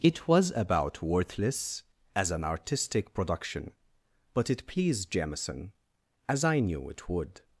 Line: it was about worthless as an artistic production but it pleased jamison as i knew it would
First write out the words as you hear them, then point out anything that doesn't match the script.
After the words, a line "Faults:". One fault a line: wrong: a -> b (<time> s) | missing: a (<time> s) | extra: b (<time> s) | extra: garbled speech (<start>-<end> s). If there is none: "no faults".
it was about worthless as an artistic production but it pleased jamison as i knew it would
Faults:
no faults